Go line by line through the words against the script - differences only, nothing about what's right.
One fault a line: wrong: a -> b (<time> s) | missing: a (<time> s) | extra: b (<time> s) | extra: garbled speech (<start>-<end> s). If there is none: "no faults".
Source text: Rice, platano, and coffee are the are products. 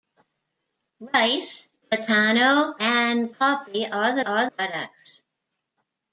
no faults